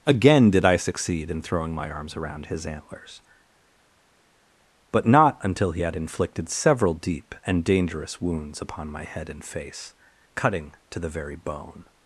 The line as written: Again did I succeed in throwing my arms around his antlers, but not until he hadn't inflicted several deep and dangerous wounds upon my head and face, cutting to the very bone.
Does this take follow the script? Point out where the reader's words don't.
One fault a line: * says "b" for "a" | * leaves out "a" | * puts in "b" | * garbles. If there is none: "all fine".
* says "had" for "hadn't"